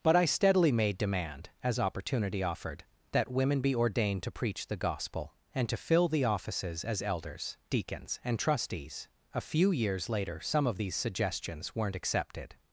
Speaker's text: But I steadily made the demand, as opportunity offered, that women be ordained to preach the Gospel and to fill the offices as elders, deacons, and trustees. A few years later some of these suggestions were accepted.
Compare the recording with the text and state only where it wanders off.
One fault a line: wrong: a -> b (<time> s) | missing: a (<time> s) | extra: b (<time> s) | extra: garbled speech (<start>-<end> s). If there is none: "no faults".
missing: the (1.0 s)
wrong: were -> weren't (11.7 s)